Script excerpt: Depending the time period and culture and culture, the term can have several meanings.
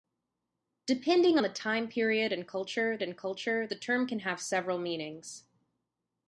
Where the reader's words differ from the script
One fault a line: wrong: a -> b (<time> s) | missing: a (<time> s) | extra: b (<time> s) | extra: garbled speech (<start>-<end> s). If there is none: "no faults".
no faults